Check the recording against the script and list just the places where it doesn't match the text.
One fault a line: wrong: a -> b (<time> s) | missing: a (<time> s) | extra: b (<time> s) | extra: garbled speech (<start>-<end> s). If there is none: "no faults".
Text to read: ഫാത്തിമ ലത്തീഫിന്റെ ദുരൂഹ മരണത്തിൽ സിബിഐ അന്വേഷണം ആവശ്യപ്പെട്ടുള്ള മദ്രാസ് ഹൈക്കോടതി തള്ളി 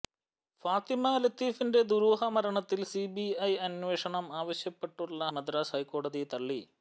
no faults